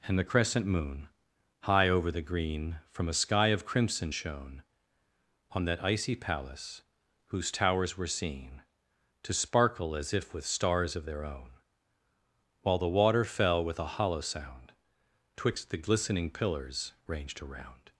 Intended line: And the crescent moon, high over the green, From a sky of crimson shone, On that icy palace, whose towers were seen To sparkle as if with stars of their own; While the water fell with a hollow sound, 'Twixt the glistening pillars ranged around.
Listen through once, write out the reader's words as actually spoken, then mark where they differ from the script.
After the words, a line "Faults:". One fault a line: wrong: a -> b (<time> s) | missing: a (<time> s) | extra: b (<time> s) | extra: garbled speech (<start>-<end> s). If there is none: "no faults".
And the crescent moon, high over the green, From a sky of crimson shone, On that icy palace, whose towers were seen To sparkle as if with stars of their own; While the water fell with a hollow sound, 'Twixt the glistening pillars ranged around.
Faults:
no faults